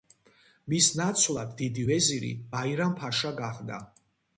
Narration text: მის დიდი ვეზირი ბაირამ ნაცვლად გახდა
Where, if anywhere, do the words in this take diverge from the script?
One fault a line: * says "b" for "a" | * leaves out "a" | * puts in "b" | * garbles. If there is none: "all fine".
* puts in "ნაცვლად"
* says "ფაშა" for "ნაცვლად"